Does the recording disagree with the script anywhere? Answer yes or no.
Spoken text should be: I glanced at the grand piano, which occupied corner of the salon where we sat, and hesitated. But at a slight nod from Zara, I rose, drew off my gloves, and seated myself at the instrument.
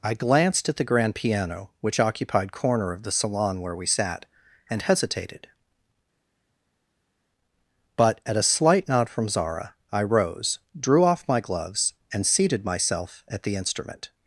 no